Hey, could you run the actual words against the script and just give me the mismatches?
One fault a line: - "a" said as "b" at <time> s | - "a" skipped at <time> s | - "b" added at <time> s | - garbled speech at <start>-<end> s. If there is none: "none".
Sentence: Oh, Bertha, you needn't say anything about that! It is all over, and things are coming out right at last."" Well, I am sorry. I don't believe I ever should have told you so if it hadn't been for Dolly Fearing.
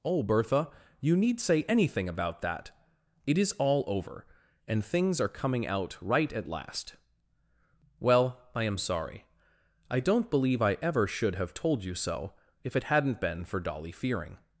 - "needn't" said as "need" at 1.1 s